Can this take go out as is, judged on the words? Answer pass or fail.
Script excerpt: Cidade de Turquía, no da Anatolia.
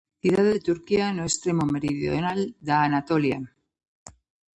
fail